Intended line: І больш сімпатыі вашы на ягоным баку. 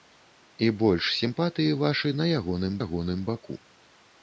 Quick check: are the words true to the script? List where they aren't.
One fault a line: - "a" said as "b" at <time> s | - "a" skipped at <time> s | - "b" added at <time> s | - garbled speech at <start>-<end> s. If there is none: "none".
- "ягоным" added at 2.8 s